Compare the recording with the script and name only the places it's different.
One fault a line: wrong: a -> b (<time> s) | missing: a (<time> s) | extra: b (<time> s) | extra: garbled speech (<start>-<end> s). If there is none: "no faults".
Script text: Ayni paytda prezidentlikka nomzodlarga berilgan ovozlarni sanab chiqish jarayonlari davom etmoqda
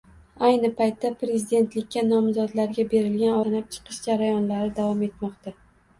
missing: ovozlarni (3.4 s)